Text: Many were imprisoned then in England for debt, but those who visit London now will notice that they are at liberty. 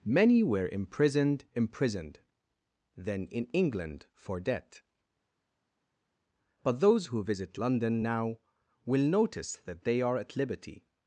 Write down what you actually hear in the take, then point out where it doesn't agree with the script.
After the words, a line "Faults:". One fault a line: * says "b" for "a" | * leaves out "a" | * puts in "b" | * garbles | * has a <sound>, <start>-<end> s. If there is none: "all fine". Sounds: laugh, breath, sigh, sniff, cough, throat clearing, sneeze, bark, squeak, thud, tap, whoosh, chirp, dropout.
Many were imprisoned imprisoned then in England for debt, but those who visit London now will notice that they are at liberty.
Faults:
* puts in "imprisoned"